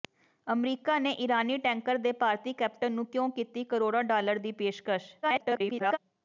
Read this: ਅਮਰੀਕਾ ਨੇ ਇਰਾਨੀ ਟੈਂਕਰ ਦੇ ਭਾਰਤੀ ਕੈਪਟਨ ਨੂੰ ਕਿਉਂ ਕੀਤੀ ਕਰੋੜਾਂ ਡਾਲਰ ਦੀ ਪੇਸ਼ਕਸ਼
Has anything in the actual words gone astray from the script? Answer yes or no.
yes